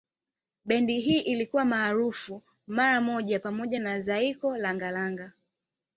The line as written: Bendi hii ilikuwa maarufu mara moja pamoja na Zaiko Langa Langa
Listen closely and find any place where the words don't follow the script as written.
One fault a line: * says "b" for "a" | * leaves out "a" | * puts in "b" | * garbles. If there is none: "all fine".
all fine